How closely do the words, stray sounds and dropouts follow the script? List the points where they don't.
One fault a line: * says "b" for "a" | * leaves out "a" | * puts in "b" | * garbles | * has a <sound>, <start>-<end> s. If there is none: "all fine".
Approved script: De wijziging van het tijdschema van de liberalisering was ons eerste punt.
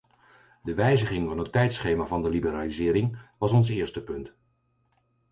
all fine